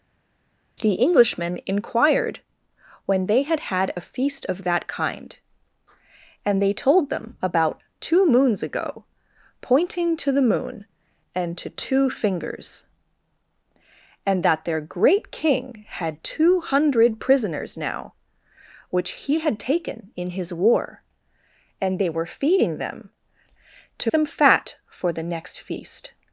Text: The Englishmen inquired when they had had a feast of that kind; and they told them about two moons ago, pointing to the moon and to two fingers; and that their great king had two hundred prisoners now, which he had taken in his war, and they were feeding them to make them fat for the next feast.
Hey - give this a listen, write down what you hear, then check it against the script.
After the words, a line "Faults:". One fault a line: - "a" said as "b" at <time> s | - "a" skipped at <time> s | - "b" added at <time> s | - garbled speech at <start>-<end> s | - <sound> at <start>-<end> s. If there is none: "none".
The Englishmen inquired when they had had a feast of that kind; and they told them about two moons ago, pointing to the moon and to two fingers; and that their great king had two hundred prisoners now, which he had taken in his war, and they were feeding them to them fat for the next feast.
Faults:
- "make" skipped at 24.1 s